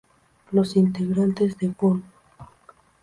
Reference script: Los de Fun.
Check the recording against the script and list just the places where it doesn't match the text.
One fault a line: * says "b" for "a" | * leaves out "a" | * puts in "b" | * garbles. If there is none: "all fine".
* puts in "integrantes"